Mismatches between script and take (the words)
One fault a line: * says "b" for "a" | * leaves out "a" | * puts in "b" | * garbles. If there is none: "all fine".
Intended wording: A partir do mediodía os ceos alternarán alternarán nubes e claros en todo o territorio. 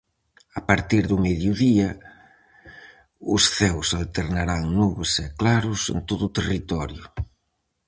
* leaves out "alternarán"